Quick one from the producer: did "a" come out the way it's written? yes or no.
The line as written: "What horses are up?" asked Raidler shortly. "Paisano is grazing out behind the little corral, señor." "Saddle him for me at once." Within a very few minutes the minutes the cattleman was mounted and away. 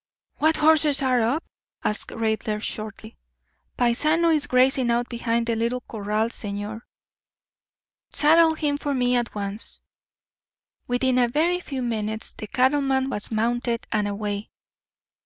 yes